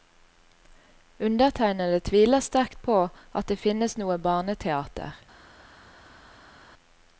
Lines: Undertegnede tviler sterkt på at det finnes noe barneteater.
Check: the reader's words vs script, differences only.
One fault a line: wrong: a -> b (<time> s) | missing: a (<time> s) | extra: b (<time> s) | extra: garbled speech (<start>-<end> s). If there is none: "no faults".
no faults